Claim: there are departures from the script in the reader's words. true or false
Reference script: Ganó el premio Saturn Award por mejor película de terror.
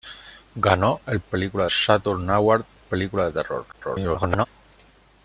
true